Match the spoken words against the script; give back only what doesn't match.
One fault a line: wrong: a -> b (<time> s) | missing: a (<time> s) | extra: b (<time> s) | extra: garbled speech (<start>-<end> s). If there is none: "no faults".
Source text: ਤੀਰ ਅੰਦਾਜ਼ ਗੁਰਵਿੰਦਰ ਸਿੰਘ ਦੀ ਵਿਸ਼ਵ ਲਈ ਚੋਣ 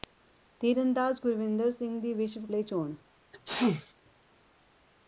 no faults